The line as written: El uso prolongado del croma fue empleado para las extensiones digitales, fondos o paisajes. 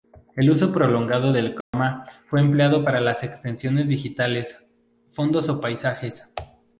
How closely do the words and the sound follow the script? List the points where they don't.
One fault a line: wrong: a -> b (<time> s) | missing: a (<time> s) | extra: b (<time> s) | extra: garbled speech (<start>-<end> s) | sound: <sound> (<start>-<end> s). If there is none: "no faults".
sound: dropout (1.6-1.7 s)